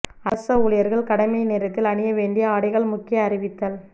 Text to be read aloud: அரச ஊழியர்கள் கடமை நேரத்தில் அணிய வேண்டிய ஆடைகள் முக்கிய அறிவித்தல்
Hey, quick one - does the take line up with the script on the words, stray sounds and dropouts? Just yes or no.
yes